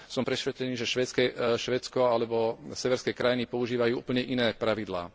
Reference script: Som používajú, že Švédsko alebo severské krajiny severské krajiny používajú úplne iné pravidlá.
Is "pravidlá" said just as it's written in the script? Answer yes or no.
yes